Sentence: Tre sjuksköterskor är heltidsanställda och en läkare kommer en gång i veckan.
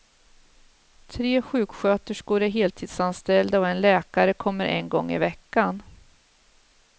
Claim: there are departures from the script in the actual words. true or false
false